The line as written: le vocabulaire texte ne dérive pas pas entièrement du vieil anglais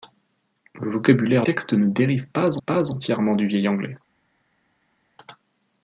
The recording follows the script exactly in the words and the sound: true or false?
true